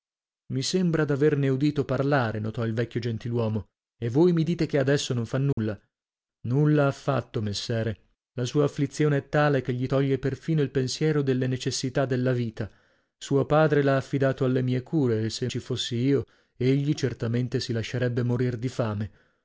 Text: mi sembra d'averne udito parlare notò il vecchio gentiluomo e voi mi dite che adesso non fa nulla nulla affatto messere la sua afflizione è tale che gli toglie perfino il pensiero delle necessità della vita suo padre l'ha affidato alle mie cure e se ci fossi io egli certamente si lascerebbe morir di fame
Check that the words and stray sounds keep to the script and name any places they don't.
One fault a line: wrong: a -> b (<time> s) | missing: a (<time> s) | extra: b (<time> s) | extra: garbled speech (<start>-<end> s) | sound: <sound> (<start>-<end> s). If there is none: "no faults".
sound: dropout (5.5-5.6 s)